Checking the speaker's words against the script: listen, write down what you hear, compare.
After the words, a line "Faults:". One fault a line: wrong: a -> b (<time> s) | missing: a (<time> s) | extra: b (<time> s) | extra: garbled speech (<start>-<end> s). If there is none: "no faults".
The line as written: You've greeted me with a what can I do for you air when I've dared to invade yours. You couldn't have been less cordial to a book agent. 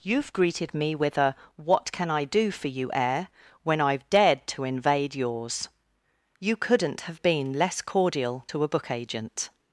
You've greeted me with a what can I do for you air when I've dared to invade yours. You couldn't have been less cordial to a book agent.
Faults:
no faults